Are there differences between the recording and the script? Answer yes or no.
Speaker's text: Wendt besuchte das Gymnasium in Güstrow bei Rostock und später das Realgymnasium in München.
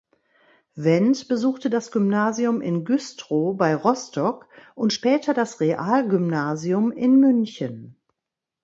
no